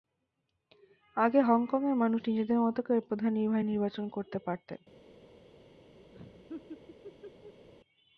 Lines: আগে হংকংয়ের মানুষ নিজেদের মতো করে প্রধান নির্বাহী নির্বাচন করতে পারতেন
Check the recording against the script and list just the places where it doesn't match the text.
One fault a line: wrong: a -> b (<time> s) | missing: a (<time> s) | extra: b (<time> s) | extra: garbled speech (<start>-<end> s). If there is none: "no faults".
no faults